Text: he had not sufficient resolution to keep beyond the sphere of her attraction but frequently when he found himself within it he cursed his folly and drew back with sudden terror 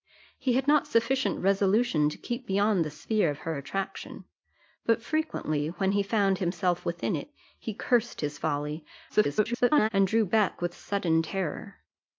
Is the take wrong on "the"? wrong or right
right